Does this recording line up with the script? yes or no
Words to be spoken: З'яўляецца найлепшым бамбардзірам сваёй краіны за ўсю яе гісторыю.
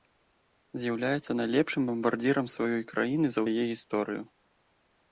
no